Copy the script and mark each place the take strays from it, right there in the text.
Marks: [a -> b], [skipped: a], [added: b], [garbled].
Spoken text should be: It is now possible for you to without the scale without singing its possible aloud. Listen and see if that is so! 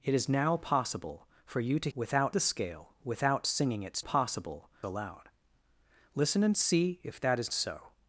It is now possible for you to without the scale without singing its possible aloud. Listen and see if that is so!